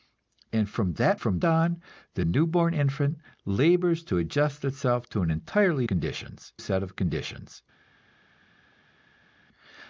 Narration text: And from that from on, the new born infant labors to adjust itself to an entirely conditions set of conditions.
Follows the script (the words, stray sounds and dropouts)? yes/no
yes